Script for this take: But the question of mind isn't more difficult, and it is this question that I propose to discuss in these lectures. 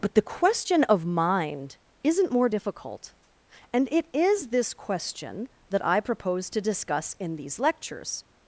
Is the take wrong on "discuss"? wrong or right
right